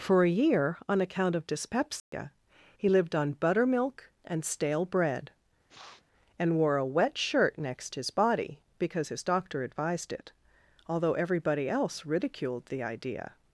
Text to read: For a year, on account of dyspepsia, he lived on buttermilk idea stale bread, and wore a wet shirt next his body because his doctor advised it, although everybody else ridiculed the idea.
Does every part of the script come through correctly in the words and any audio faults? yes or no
no